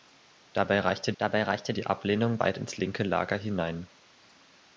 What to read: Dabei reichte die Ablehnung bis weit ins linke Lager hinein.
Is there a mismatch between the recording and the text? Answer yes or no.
yes